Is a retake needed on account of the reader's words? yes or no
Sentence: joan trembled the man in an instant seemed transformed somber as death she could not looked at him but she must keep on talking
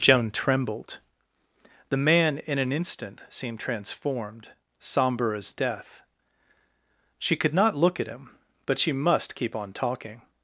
yes